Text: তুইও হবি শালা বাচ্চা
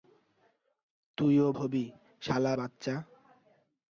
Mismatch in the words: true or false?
false